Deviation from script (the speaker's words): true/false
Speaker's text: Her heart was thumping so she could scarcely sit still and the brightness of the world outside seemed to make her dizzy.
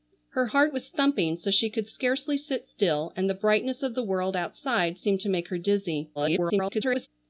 true